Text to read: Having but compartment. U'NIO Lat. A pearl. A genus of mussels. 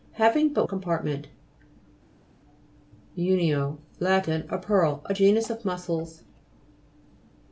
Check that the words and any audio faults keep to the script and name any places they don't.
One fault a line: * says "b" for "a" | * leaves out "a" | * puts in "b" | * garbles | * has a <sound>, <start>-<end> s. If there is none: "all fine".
all fine